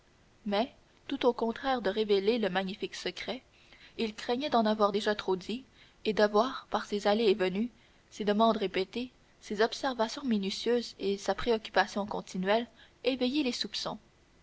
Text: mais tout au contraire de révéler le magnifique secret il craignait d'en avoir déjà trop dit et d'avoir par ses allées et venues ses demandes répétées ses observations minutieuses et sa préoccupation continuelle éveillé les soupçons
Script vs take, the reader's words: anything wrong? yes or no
no